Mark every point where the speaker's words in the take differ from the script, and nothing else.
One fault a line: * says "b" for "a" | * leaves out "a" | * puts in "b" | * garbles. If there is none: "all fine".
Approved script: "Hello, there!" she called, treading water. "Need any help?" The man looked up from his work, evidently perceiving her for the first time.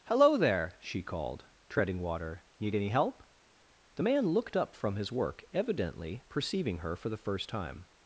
all fine